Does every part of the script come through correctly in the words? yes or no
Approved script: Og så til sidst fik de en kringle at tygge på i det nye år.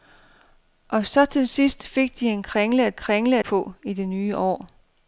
no